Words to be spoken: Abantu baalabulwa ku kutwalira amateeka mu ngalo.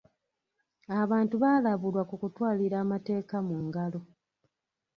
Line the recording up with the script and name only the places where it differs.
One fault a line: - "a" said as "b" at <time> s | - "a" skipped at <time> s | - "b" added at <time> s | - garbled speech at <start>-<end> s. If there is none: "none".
none